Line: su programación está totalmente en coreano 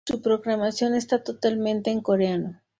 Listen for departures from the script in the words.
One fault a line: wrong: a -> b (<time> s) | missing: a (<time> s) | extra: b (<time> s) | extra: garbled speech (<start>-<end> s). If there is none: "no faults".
no faults